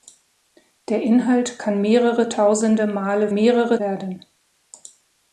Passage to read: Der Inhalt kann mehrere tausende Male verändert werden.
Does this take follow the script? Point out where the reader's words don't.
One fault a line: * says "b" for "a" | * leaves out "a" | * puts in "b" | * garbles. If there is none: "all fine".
* says "mehrere" for "verändert"